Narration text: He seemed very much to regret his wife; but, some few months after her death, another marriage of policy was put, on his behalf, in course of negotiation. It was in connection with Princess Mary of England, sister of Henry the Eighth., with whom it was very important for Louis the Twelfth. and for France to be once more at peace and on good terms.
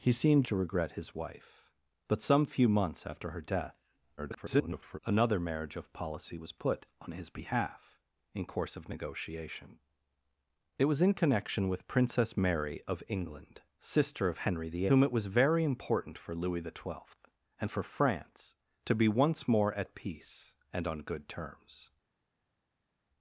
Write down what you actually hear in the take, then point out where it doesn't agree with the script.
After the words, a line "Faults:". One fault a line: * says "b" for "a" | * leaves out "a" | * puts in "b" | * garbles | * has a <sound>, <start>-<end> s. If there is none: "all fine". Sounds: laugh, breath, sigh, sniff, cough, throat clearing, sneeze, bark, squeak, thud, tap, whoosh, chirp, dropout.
He seemed to regret his wife; but, some few months after her death, [garbled] another marriage of policy was put, on his behalf, in course of negotiation. It was in connection with Princess Mary of England, sister of Henry the Whom it was very important for Louis the Twelfth. and for France to be once more at peace and on good terms.
Faults:
* leaves out "very much"
* garbles
* leaves out "Eighth with"